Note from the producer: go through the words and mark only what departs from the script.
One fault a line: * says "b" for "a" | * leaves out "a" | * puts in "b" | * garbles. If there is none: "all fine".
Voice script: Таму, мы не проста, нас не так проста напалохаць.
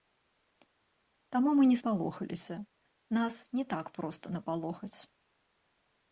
* says "спалохаліся" for "проста"